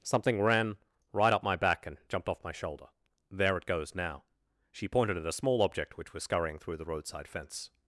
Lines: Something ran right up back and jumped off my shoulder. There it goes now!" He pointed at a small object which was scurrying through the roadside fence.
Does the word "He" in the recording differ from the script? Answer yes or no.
yes